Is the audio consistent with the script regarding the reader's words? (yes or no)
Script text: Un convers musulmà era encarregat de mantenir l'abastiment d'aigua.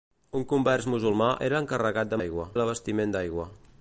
no